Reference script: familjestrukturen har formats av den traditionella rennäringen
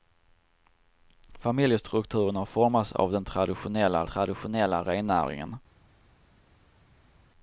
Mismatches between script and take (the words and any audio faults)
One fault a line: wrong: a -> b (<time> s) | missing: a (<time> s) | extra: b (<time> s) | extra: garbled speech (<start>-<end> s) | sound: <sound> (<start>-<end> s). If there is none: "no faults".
extra: traditionella (4.1 s)